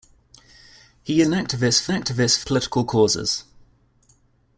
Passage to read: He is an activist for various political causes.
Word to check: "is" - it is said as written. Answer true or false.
false